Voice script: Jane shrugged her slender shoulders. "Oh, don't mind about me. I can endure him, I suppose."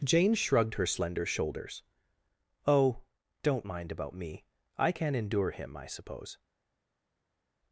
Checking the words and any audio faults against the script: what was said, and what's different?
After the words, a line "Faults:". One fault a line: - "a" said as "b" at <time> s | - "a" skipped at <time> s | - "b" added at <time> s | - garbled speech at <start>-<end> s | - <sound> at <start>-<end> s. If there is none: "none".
Jane shrugged her slender shoulders. "Oh, don't mind about me. I can endure him, I suppose."
Faults:
none